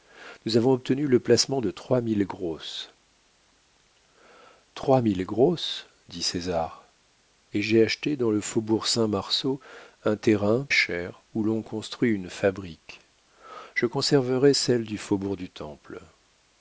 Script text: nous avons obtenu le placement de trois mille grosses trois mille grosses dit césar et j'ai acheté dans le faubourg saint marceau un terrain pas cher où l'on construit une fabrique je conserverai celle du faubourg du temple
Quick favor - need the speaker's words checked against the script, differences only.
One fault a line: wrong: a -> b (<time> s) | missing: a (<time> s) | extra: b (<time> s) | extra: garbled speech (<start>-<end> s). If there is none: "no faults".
missing: pas (10.7 s)